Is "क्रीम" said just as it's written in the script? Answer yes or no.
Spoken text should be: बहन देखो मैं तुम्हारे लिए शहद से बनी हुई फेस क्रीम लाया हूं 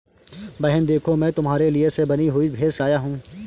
no